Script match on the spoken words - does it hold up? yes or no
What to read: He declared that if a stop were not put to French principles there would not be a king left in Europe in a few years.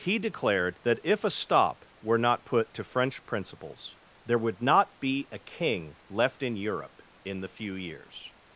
no